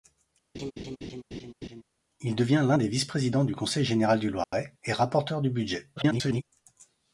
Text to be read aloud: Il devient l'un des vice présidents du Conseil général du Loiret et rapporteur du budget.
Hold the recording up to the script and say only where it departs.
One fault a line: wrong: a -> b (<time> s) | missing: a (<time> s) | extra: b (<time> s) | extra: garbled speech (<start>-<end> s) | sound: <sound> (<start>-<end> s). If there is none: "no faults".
sound: laugh (0.5-1.8 s)
sound: dropout (4.4-4.5 s)
extra: garbled speech (6.0-6.4 s)